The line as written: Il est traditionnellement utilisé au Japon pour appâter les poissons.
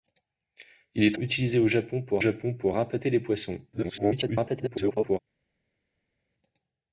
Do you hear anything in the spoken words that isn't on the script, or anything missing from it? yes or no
yes